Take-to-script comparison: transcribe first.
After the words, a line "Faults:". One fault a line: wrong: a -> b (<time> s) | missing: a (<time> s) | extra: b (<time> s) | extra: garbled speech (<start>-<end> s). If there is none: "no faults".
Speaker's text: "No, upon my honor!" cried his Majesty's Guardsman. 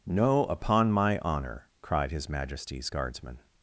"No, upon my honor!" cried his Majesty's Guardsman.
Faults:
no faults